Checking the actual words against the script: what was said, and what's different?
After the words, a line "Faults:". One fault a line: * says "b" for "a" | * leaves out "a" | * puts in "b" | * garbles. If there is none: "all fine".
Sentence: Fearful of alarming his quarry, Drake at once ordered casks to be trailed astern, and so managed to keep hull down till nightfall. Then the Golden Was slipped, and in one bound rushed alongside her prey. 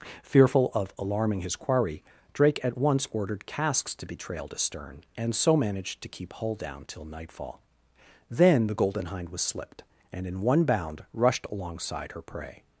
Fearful of alarming his quarry, Drake at once ordered casks to be trailed astern, and so managed to keep hull down till nightfall. Then the Golden Hind was slipped, and in one bound rushed alongside her prey.
Faults:
* puts in "Hind"